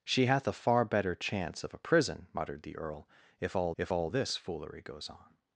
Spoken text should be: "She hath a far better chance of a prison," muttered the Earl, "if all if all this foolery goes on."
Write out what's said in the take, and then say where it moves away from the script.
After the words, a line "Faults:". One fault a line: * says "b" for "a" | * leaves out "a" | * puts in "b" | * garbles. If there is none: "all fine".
"She hath a far better chance of a prison," muttered the Earl, "if all if all this foolery goes on."
Faults:
all fine